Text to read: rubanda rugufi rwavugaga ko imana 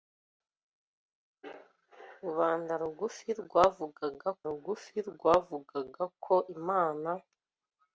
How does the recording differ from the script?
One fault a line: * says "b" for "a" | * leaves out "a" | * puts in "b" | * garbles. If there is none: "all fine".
* puts in "rugufi rwavugaga"